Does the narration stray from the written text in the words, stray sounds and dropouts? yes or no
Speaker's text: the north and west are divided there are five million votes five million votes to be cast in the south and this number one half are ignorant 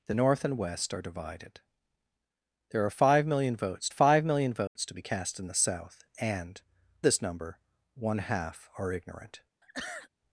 yes